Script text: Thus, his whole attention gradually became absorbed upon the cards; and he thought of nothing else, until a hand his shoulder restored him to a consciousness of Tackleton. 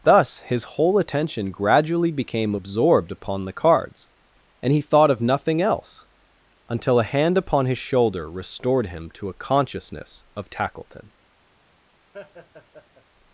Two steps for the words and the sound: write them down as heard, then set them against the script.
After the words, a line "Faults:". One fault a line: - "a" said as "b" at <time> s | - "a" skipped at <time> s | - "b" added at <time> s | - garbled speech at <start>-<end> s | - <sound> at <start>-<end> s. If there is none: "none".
Thus, his whole attention gradually became absorbed upon the cards; and he thought of nothing else, until a hand upon his shoulder restored him to a consciousness of Tackleton.
Faults:
- "upon" added at 7.4 s
- laugh at 12.1-13.0 s